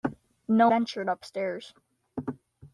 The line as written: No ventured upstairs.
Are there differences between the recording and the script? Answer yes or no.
no